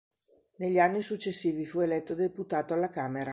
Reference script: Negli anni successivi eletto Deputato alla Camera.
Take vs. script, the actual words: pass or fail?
fail